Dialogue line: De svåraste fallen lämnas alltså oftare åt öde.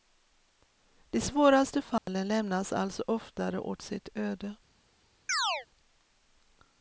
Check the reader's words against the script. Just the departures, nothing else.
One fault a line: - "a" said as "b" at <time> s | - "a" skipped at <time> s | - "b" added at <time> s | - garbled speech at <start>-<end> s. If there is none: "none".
- "sitt" added at 3.8 s